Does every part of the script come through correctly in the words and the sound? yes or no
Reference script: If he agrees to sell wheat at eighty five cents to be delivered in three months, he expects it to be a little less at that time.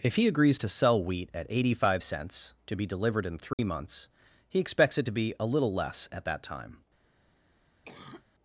no